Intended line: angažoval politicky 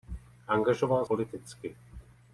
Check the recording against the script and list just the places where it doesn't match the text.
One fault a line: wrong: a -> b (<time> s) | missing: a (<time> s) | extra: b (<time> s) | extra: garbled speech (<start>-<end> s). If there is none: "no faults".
no faults